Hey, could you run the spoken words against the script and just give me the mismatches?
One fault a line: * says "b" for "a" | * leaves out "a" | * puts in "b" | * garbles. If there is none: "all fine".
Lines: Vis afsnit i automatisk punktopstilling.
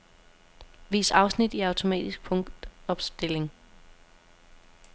all fine